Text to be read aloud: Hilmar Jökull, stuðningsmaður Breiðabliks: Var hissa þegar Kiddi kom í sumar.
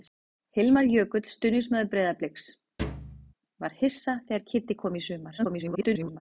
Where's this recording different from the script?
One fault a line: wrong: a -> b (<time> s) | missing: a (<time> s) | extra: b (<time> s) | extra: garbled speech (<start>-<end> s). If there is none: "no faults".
extra: garbled speech (5.4-6.2 s)